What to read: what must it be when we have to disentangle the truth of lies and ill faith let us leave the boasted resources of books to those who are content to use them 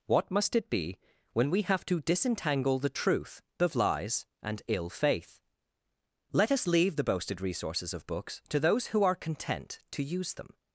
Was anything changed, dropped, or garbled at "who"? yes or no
no